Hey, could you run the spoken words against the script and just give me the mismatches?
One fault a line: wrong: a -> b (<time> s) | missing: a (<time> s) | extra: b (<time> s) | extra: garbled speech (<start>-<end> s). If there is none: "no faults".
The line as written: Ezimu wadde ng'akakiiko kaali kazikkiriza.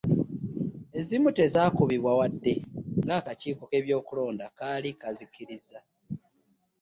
extra: tezaakubibwa (1.4 s)
extra: k'ebyokulonda (3.7 s)